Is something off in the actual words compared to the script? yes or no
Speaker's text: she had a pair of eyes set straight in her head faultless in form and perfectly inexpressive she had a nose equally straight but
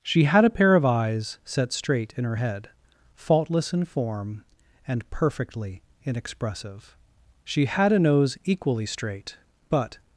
no